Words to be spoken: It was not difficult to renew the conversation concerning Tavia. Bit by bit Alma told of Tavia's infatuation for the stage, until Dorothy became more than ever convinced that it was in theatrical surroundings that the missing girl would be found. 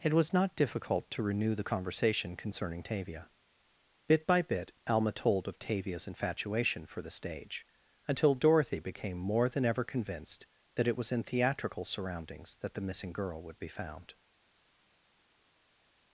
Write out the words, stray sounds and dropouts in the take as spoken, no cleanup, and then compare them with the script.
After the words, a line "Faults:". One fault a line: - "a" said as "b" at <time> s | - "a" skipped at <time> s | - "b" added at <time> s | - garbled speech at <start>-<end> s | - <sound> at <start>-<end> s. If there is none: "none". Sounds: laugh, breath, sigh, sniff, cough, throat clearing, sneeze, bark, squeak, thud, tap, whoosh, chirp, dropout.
It was not difficult to renew the conversation concerning Tavia. Bit by bit Alma told of Tavia's infatuation for the stage, until Dorothy became more than ever convinced that it was in theatrical surroundings that the missing girl would be found.
Faults:
none